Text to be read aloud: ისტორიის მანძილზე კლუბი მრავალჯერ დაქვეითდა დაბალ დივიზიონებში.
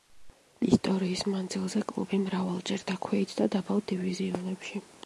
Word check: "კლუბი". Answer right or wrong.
right